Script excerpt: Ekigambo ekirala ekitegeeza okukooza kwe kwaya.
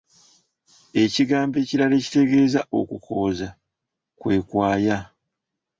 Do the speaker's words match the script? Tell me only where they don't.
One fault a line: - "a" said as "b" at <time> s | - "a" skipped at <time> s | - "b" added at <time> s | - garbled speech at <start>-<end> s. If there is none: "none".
none